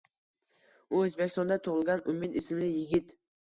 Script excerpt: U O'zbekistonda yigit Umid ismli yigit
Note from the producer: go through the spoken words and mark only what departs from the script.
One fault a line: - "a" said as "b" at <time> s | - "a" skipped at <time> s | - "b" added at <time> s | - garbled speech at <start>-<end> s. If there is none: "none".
- "yigit" said as "tug'ilgan" at 1.7 s